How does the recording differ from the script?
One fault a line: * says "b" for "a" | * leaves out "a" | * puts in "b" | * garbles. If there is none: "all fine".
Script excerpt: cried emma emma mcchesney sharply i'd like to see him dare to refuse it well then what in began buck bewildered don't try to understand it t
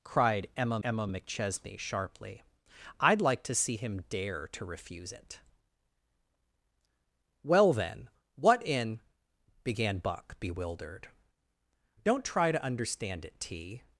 all fine